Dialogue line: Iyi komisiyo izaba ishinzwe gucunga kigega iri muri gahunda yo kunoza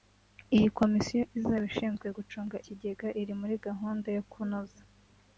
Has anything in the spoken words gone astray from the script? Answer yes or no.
no